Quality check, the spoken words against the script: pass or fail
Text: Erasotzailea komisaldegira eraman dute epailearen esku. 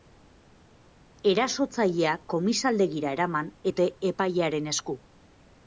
pass